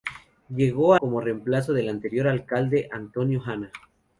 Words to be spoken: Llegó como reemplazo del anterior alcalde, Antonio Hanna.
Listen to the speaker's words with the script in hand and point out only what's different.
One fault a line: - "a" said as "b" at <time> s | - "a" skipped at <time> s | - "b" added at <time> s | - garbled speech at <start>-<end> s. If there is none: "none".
none